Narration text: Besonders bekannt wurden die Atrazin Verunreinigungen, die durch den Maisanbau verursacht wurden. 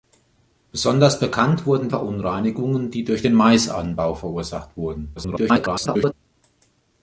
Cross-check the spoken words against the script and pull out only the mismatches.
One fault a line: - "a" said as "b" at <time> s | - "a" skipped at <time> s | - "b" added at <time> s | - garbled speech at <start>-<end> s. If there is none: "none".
- "die Atrazin" skipped at 1.9 s
- garbled speech at 5.2-6.1 s